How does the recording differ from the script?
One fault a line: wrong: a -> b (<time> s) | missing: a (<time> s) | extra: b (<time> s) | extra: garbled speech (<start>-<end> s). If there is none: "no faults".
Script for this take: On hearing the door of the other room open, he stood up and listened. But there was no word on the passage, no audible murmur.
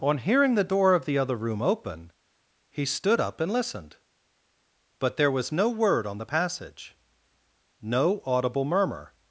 no faults